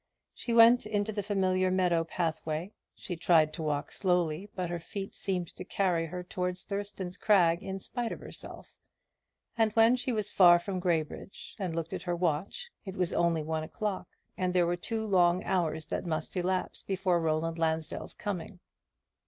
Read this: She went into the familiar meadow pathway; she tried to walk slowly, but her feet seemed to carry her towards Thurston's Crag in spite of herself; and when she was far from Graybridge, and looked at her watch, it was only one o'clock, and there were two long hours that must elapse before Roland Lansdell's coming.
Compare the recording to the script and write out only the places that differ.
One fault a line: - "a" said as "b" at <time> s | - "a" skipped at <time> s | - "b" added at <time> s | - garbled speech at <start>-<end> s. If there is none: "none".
none